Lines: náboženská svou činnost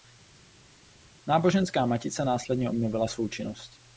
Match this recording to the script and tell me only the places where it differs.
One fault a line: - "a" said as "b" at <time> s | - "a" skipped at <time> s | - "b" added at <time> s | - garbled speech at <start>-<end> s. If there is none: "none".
- "matice následně obnovila" added at 1.9 s